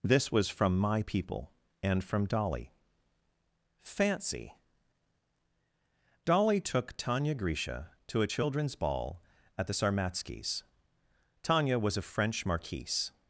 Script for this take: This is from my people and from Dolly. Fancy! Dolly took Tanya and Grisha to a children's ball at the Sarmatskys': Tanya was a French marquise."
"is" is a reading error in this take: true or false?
true